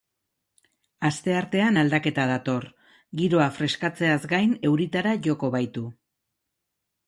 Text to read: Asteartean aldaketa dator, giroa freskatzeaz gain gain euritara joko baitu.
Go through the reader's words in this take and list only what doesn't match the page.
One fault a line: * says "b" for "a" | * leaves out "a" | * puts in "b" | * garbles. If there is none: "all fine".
* leaves out "gain"